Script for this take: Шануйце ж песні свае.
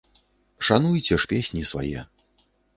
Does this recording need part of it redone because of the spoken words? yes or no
no